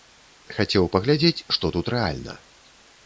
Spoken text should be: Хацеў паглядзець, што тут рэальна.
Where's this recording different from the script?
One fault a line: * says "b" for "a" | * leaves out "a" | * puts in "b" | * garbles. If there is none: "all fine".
all fine